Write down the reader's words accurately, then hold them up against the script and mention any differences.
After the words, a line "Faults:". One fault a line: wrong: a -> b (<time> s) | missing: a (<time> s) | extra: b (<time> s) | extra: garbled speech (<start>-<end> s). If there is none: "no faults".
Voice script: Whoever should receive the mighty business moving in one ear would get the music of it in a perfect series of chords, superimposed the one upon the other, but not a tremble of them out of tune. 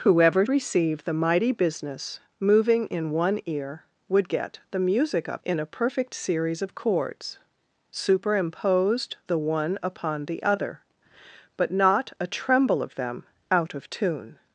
Whoever receive the mighty business moving in one ear would get the music of in a perfect series of chords, superimposed the one upon the other, but not a tremble of them out of tune.
Faults:
missing: should (0.5 s)
missing: it (5.4 s)